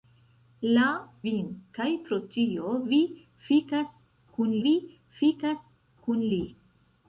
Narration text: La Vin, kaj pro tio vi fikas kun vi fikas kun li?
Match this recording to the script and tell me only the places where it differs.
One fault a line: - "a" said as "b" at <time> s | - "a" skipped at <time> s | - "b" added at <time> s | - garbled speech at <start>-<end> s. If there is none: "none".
none